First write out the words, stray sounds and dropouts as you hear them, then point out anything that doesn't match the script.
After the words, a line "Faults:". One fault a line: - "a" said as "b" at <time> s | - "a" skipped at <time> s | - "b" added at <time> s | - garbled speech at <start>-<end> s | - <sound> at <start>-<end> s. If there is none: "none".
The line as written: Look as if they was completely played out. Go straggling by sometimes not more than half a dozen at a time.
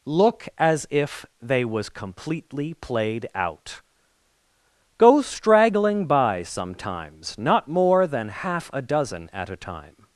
Look as if they was completely played out. Go straggling by sometimes not more than half a dozen at a time.
Faults:
none